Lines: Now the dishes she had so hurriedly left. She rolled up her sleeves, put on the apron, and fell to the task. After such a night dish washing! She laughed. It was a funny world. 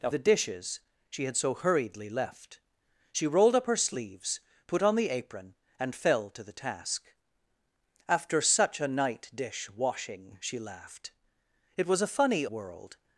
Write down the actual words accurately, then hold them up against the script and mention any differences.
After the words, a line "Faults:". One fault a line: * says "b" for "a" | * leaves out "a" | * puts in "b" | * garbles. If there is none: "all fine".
Now the dishes she had so hurriedly left. She rolled up her sleeves, put on the apron, and fell to the task. After such a night dish washing! She laughed. It was a funny world.
Faults:
all fine